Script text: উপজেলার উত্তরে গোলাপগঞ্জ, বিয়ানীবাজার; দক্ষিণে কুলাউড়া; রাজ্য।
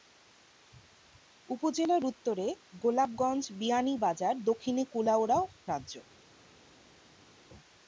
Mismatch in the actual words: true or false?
false